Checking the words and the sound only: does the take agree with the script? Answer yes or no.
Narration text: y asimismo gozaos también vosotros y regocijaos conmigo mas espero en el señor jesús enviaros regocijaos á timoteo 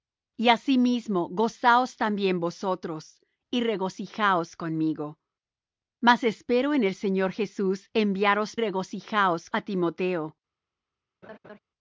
no